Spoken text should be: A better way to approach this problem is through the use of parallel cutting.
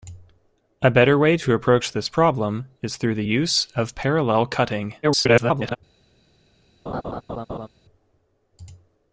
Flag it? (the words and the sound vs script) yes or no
yes